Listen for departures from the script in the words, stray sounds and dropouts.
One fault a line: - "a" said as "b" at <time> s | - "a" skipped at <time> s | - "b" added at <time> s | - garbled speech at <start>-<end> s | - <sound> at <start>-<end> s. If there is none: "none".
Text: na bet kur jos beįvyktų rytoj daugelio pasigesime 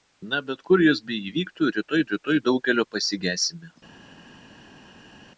- "rytoj" added at 2.1 s